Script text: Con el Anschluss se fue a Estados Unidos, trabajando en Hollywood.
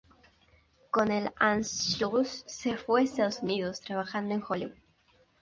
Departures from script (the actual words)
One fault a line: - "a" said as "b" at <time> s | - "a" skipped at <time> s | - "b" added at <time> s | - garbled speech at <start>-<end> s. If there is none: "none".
none